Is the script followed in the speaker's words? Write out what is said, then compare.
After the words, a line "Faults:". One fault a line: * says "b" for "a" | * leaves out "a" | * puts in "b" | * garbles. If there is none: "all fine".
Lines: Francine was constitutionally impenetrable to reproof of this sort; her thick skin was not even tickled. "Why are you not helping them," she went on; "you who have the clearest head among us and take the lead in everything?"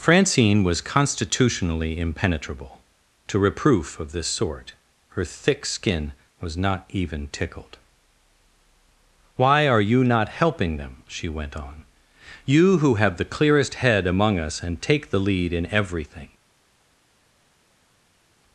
Francine was constitutionally impenetrable to reproof of this sort; her thick skin was not even tickled. "Why are you not helping them," she went on; "you who have the clearest head among us and take the lead in everything?"
Faults:
all fine